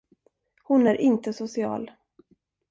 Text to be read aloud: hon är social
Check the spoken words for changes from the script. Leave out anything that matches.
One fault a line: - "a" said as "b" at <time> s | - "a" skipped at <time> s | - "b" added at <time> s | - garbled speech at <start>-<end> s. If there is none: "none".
- "inte" added at 0.9 s